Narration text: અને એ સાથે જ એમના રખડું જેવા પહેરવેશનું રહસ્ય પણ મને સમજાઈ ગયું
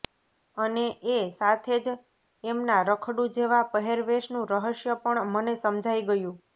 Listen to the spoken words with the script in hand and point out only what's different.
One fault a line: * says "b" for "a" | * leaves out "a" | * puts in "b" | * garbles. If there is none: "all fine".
all fine